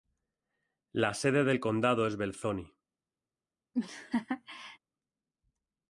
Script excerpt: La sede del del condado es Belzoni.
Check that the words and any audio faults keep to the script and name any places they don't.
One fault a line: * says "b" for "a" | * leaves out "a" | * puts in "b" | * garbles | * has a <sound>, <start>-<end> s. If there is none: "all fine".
* leaves out "del"
* has a laugh, 3.7-4.8 s